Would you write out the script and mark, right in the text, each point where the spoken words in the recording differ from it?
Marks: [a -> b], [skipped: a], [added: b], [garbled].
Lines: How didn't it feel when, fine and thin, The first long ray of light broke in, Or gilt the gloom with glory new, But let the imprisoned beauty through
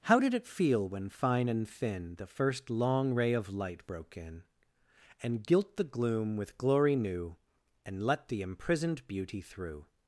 How [didn't -> did] it feel when, fine and thin, The first long ray of light broke in, [Or -> And] gilt the gloom with glory new, [But -> And] let the imprisoned beauty through